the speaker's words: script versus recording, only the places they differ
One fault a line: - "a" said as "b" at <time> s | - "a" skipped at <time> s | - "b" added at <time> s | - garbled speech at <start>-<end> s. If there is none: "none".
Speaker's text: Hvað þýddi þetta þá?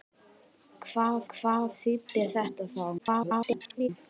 - "hvað" added at 1.3 s
- garbled speech at 3.0-3.9 s